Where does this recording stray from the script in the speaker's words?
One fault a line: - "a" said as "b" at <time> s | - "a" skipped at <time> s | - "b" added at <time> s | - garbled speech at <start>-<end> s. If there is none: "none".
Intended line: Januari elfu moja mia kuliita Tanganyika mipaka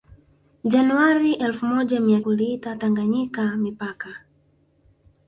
none